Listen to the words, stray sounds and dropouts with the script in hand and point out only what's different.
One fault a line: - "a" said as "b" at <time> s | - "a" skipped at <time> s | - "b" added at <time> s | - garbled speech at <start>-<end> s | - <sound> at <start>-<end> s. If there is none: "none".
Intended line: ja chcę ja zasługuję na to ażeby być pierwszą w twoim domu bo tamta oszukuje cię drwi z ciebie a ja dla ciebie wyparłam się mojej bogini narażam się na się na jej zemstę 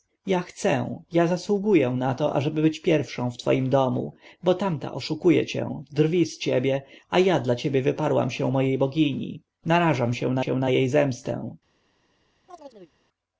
- chirp at 12.5-13.0 s